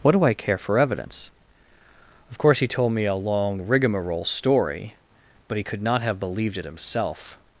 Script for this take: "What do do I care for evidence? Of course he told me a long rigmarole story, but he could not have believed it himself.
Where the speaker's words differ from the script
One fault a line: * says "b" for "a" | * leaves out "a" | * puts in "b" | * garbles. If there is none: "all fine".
* leaves out "do"